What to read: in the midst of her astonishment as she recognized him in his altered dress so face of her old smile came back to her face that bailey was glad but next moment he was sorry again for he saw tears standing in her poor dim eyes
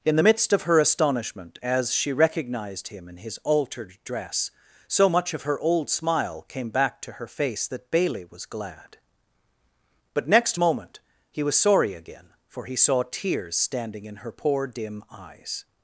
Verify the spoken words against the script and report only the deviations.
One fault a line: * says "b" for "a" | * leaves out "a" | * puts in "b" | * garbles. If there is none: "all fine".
* says "much" for "face"